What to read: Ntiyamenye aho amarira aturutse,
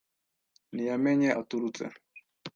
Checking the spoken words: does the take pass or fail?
fail